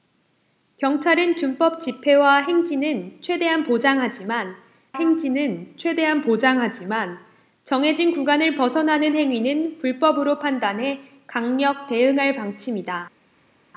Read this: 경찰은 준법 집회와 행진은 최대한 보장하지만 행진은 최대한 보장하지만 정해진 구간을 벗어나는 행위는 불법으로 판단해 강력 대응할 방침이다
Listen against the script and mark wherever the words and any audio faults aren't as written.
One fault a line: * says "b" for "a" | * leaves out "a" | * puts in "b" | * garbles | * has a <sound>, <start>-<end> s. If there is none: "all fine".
all fine